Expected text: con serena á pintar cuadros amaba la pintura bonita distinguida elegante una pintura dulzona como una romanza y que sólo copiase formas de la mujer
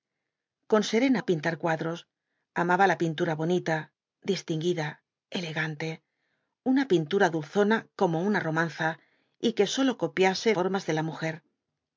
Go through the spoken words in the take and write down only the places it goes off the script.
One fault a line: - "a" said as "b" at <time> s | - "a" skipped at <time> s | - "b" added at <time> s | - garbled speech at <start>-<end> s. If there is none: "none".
none